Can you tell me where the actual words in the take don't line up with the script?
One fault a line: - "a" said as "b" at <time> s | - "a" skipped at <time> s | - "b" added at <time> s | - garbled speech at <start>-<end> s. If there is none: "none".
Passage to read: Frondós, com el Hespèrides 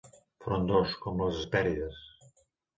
- "el" said as "les" at 1.2 s